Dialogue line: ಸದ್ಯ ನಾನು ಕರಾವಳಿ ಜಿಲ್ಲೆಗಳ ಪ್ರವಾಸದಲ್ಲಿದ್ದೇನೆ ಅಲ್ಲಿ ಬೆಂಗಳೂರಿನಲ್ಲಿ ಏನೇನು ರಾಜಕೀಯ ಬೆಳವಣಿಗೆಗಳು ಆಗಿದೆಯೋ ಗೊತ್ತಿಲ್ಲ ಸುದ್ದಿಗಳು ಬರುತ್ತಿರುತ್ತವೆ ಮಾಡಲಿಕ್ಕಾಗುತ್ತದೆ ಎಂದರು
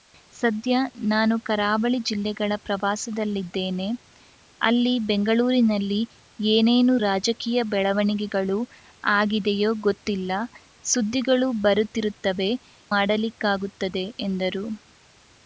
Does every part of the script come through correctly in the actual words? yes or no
yes